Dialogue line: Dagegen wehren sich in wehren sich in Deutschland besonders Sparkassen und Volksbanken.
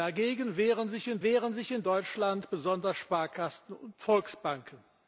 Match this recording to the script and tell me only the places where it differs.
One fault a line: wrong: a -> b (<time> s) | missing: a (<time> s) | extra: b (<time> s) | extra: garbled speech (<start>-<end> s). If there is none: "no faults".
no faults